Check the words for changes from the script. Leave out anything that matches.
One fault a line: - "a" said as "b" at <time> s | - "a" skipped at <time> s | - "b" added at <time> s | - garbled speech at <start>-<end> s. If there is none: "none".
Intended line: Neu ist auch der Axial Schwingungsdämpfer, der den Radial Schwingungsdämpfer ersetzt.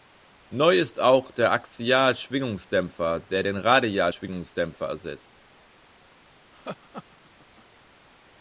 none